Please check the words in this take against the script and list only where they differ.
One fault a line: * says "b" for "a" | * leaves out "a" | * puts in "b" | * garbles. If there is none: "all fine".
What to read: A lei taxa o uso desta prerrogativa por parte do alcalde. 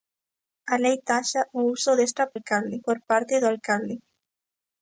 * says "alcalde" for "prerrogativa"